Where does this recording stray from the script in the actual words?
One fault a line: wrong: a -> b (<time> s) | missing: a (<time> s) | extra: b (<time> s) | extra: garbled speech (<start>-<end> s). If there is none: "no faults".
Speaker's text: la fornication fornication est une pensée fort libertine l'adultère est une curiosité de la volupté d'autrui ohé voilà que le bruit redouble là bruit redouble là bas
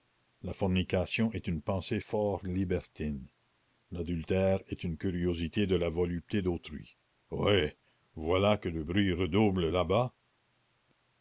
missing: fornication (1.3 s)
missing: bruit redouble là (9.8 s)